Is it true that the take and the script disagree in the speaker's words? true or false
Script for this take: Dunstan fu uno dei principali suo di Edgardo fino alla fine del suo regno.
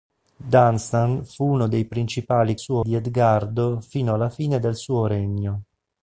false